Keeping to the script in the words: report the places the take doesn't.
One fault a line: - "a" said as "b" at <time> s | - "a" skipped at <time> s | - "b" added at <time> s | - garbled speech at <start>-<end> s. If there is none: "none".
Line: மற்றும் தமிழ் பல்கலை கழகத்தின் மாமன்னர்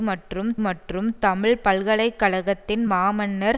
- "மற்றும்" added at 0.6 s